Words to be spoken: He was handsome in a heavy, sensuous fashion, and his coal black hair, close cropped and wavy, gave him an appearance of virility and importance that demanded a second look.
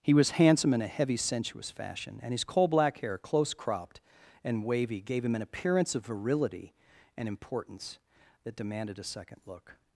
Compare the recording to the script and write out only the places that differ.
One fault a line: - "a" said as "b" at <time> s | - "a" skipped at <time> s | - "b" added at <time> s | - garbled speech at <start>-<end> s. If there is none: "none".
none